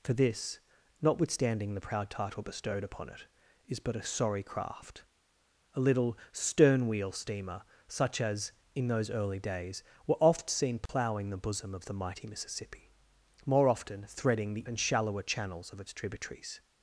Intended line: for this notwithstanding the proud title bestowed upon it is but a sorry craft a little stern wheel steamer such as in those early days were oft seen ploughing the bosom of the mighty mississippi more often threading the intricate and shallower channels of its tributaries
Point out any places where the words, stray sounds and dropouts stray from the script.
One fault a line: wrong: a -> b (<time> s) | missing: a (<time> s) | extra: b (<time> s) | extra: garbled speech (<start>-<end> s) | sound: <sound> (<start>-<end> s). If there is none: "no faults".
sound: dropout (10.9-10.9 s)
missing: intricate (14.7 s)